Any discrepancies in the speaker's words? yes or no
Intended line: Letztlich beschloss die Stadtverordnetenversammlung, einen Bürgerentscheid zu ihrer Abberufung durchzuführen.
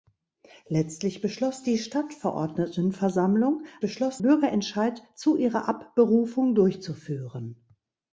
yes